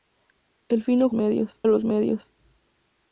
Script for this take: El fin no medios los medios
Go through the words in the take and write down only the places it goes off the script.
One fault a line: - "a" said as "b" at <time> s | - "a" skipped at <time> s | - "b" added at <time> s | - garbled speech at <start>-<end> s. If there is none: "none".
none